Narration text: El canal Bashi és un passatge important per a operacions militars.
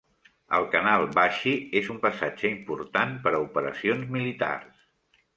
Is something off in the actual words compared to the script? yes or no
no